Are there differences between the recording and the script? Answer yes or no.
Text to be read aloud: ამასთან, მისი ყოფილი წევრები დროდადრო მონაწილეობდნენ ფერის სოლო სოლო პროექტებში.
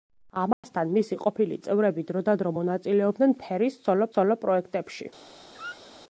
no